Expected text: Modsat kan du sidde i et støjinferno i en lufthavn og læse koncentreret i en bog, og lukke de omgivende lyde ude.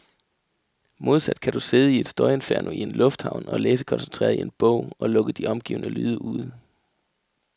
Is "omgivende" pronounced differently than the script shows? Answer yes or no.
no